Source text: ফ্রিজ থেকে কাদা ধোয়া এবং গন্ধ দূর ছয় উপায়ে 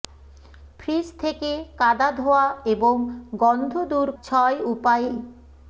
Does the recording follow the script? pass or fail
pass